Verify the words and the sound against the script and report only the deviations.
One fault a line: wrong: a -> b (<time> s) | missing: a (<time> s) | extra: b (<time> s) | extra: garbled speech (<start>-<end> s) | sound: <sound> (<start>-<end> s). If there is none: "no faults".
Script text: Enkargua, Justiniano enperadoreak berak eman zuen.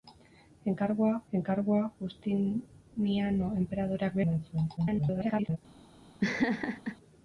extra: enkargua (1.4 s)
missing: berak (4.2 s)
extra: garbled speech (4.8-5.6 s)
sound: laugh (6.2-7.0 s)